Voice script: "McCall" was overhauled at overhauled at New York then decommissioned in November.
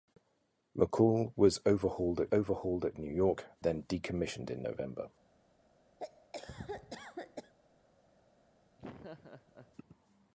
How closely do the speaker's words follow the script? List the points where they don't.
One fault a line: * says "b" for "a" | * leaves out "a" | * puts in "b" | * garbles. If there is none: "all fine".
all fine